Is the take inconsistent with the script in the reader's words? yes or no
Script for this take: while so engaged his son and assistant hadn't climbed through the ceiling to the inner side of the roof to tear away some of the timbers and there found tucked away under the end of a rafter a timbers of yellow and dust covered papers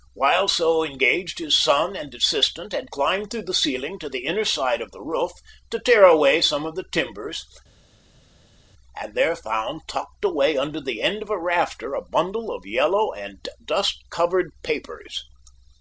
yes